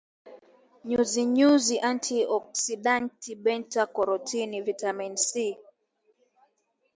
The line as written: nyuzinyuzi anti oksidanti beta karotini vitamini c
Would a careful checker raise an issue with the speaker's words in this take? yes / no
no